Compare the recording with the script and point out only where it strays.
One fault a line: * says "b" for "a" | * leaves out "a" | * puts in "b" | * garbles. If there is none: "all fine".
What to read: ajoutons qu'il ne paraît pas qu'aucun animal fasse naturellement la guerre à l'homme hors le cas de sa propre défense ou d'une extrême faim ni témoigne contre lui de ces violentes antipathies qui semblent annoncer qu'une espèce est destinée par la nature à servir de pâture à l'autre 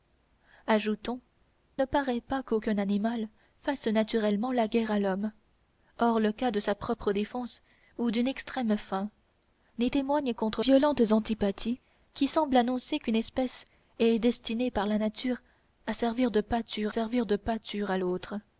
* leaves out "qu'il"
* leaves out "lui de ces"
* puts in "servir de pâture"